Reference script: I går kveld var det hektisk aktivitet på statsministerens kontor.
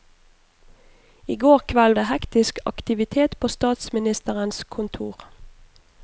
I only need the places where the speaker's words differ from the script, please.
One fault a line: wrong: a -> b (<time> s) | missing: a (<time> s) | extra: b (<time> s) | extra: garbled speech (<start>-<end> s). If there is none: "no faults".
missing: var (1.9 s)